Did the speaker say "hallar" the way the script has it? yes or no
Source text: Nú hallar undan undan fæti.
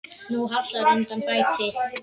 yes